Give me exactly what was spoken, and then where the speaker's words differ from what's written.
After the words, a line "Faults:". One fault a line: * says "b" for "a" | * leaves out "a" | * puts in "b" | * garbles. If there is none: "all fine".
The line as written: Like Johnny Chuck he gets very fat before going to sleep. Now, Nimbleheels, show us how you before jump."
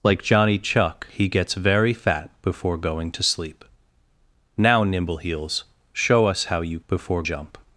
Like Johnny Chuck he gets very fat before going to sleep. Now, Nimbleheels, show us how you before jump."
Faults:
all fine